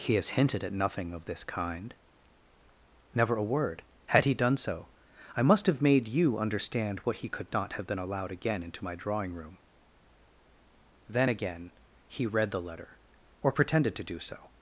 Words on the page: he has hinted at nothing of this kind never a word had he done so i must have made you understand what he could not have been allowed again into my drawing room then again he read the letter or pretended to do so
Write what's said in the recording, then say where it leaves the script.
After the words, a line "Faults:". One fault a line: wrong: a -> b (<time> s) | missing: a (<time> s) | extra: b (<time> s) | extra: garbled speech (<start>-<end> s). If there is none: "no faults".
he has hinted at nothing of this kind never a word had he done so i must have made you understand what he could not have been allowed again into my drawing room then again he read the letter or pretended to do so
Faults:
no faults